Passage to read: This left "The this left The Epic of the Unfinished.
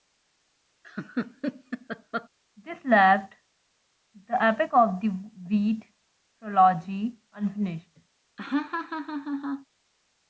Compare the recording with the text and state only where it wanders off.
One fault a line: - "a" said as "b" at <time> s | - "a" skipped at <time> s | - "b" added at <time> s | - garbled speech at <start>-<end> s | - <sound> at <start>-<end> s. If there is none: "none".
- laugh at 0.8-2.3 s
- "this left" said as "Epic of" at 4.4 s
- "Epic of the" said as "Wheat trilogy" at 5.1 s
- laugh at 8.4-9.7 s